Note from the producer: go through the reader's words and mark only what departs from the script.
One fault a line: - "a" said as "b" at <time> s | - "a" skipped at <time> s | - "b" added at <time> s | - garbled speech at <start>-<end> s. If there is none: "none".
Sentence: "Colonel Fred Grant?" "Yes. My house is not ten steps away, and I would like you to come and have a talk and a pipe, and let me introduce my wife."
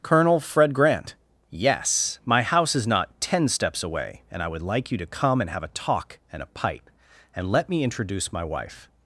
none